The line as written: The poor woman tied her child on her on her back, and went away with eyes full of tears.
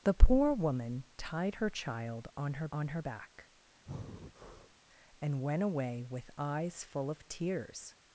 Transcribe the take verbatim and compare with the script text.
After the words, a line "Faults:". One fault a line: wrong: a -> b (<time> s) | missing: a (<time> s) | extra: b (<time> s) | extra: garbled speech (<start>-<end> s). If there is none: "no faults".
The poor woman tied her child on her on her back, and went away with eyes full of tears.
Faults:
no faults